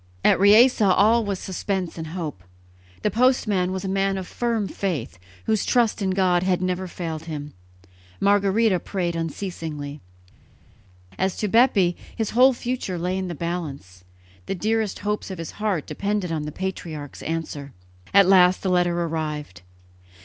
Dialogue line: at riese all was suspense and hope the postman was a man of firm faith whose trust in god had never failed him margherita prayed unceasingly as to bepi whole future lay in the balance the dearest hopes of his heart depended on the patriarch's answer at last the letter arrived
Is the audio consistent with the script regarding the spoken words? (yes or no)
no